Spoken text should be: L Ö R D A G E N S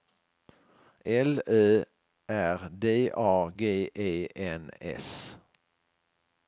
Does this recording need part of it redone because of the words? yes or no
no